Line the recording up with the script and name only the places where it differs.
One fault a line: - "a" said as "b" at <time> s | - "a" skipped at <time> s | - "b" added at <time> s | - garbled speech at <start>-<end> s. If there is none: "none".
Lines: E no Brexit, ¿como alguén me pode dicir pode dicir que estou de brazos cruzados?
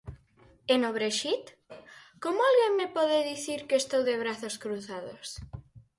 - "pode dicir" skipped at 3.6 s